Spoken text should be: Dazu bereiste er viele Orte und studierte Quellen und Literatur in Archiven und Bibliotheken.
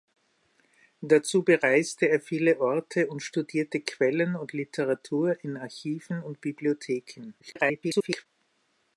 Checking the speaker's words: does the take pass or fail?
fail